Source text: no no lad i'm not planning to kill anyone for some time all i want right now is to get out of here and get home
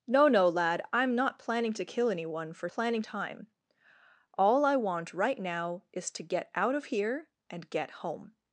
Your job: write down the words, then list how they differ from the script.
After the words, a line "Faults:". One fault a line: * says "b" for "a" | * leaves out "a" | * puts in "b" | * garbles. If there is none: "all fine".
no no lad i'm not planning to kill anyone for planning time all i want right now is to get out of here and get home
Faults:
* says "planning" for "some"